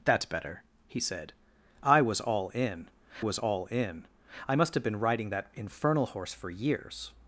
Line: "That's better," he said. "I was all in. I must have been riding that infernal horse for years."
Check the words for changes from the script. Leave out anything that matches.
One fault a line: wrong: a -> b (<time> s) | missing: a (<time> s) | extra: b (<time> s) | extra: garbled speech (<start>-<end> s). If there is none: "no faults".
extra: was all in (3.2 s)